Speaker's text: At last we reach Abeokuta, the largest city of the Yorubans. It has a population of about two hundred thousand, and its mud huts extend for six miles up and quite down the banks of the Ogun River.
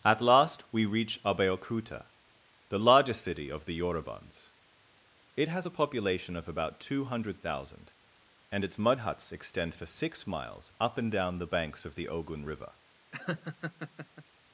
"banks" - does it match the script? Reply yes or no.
yes